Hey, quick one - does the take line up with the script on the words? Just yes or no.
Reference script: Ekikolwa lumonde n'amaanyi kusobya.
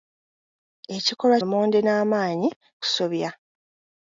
yes